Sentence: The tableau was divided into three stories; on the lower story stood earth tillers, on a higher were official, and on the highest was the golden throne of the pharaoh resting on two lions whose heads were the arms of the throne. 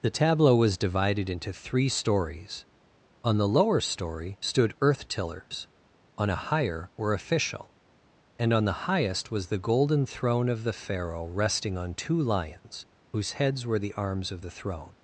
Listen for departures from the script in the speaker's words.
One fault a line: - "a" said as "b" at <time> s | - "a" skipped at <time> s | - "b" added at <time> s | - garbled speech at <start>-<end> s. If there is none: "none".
none